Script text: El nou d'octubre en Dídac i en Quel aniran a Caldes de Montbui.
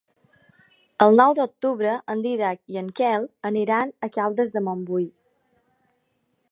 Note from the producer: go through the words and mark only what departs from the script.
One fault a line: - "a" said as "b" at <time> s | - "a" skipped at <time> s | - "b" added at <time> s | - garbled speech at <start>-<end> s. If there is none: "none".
none